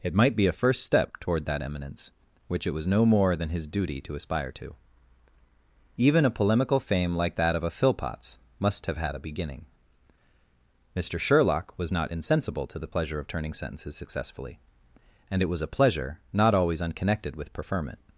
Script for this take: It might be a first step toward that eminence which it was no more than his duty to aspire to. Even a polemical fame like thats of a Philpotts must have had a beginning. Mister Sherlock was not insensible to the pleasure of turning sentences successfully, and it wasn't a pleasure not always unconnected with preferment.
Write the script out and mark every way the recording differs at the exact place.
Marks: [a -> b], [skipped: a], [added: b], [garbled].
It might be a first step toward that eminence which it was no more than his duty to aspire to. Even a polemical fame like [thats -> that] of a Philpotts must have had a beginning. Mister Sherlock was not insensible to the pleasure of turning sentences successfully, and it [wasn't -> was] a pleasure not always unconnected with preferment.